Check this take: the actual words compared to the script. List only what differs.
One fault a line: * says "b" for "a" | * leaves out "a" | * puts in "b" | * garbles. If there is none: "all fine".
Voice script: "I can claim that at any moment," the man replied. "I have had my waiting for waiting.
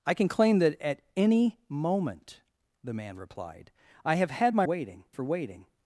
all fine